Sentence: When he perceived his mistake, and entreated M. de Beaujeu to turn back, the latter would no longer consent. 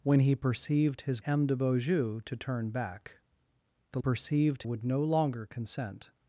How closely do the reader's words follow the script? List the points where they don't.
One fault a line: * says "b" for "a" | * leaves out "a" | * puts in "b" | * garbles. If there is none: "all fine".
* leaves out "mistake and entreated"
* says "perceived" for "latter"